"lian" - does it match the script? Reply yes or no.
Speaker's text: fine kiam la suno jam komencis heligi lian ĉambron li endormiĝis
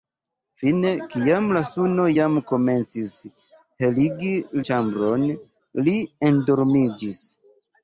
no